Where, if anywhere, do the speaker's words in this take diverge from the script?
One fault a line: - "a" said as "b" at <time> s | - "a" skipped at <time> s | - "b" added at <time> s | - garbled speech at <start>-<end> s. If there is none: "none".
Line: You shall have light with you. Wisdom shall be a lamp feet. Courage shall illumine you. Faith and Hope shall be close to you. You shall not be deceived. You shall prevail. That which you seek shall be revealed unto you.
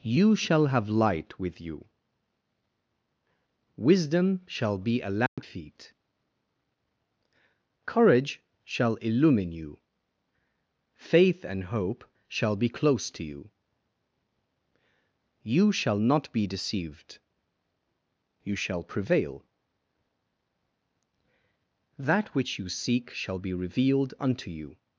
none